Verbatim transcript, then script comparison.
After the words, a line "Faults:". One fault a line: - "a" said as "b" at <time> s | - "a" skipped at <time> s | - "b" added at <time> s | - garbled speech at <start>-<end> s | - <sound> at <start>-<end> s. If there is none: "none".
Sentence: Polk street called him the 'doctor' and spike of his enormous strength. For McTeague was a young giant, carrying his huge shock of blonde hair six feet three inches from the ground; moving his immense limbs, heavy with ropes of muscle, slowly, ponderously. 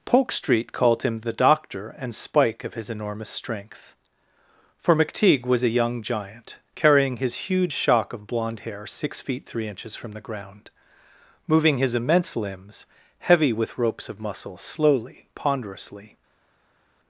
Polk street called him the 'doctor' and spike of his enormous strength. For McTeague was a young giant, carrying his huge shock of blonde hair six feet three inches from the ground; moving his immense limbs, heavy with ropes of muscle, slowly, ponderously.
Faults:
none